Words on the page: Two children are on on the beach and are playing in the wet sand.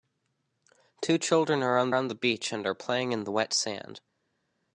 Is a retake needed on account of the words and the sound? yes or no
no